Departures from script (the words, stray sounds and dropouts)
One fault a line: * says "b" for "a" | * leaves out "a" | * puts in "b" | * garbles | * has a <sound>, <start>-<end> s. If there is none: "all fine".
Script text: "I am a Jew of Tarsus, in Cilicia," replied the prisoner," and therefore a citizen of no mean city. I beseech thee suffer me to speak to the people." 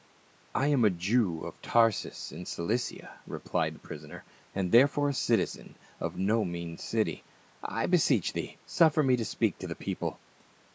all fine